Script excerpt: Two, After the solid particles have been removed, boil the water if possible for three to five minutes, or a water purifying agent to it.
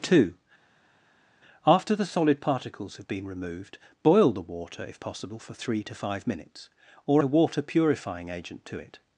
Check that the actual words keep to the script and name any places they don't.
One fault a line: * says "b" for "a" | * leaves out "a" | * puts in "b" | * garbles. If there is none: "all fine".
all fine